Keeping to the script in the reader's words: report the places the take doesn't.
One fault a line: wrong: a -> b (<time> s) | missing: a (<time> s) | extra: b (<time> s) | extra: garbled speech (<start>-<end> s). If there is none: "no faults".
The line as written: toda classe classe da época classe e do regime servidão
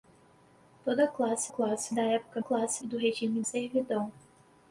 no faults